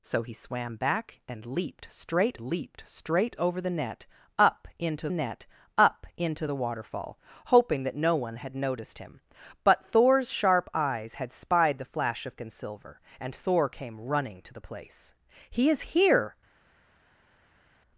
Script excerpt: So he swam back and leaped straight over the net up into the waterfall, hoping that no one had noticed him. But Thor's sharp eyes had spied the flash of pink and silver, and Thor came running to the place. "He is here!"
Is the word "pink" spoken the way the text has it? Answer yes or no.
no